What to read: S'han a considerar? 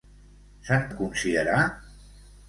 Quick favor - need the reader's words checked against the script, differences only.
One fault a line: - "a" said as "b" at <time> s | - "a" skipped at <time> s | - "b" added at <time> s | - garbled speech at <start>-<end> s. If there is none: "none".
none